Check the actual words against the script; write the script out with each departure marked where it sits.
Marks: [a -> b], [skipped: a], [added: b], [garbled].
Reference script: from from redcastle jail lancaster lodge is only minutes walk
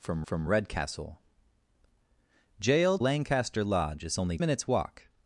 from from redcastle jail lancaster lodge is only minutes walk